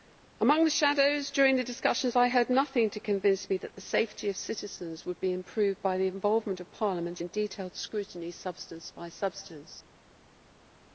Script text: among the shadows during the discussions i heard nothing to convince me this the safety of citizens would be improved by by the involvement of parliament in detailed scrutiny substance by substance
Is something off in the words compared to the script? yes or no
yes